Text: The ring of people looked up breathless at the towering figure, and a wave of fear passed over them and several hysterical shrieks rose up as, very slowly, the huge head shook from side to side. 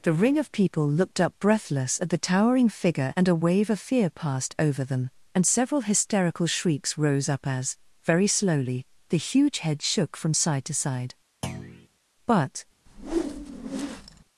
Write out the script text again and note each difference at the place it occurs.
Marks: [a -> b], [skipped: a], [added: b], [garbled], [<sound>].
The ring of people looked up breathless at the towering figure, and a wave of fear passed over them and several hysterical shrieks rose up as, very slowly, the huge head shook from side to side. [thud] [added: But] [whoosh]